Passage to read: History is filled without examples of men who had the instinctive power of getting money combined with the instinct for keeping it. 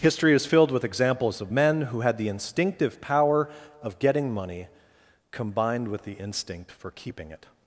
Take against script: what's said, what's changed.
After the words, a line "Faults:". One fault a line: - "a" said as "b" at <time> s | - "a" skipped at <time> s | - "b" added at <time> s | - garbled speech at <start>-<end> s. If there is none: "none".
History is filled with examples of men who had the instinctive power of getting money combined with the instinct for keeping it.
Faults:
- "without" said as "with" at 0.7 s